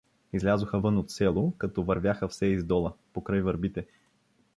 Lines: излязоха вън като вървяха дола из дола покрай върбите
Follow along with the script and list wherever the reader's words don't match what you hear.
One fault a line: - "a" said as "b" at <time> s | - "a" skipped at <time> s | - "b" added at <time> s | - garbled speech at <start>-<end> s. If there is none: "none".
- "от село" added at 1.0 s
- "дола" said as "все" at 2.2 s